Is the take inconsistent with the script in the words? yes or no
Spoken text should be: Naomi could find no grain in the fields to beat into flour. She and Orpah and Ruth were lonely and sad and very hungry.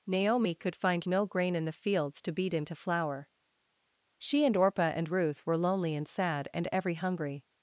yes